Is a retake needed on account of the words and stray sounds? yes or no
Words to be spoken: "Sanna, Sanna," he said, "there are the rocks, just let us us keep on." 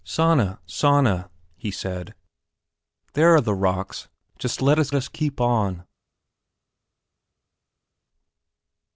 no